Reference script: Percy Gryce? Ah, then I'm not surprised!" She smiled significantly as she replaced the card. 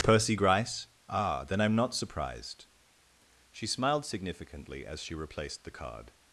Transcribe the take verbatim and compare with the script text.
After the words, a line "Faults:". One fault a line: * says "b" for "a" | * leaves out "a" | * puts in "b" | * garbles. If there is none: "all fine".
Percy Gryce? Ah, then I'm not surprised!" She smiled significantly as she replaced the card.
Faults:
all fine